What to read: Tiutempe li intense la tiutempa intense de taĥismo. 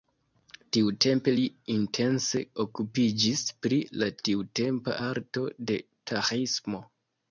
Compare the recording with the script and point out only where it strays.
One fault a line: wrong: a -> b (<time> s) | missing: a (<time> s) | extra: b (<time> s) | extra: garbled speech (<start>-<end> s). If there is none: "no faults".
extra: okupiĝis pri (2.6 s)
wrong: intense -> arto (5.1 s)